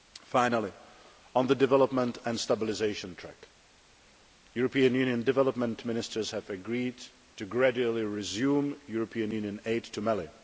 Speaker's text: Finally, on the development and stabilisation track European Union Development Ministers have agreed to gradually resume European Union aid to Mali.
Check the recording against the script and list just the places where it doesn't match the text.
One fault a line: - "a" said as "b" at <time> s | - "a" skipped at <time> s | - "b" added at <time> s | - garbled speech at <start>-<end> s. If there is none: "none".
none